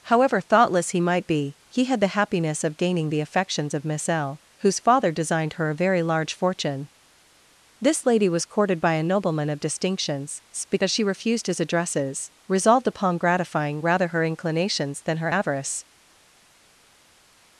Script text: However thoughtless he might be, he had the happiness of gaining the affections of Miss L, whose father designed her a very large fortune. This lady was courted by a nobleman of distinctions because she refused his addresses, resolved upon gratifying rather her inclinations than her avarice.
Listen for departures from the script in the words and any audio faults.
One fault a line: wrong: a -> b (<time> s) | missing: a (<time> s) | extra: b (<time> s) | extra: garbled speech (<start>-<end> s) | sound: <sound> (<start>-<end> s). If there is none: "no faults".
no faults